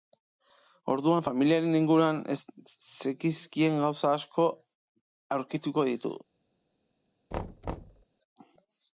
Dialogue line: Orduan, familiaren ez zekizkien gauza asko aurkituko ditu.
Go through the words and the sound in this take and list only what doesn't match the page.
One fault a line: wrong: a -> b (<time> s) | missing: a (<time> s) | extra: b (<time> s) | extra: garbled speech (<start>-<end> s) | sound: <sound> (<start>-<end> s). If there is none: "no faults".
extra: inguruan (1.8 s)
sound: thud (7.3-8.1 s)